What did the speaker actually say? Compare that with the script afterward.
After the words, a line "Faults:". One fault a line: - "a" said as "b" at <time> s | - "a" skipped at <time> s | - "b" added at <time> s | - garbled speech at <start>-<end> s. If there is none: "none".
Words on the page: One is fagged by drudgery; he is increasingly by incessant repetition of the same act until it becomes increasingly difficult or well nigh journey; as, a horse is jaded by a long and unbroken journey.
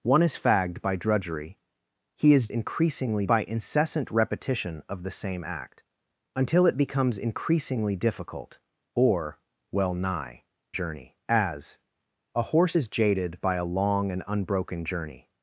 One is fagged by drudgery; he is increasingly by incessant repetition of the same act until it becomes increasingly difficult or well nigh journey; as, a horse is jaded by a long and unbroken journey.
Faults:
none